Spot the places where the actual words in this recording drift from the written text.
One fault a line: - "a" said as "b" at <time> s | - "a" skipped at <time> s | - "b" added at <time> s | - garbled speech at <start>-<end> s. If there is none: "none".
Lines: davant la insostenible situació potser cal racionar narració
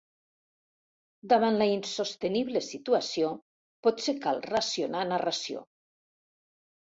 none